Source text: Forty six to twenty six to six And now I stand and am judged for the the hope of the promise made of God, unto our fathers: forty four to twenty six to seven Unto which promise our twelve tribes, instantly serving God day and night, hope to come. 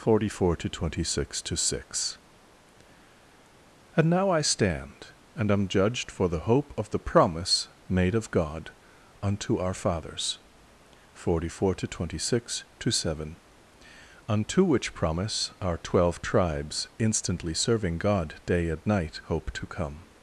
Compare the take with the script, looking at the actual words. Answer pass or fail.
fail